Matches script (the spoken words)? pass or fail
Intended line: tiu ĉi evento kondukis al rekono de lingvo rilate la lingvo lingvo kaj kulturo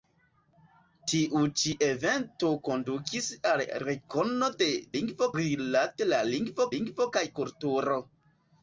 pass